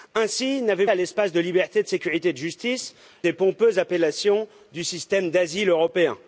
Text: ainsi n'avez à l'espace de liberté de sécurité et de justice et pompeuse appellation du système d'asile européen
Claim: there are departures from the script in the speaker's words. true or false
false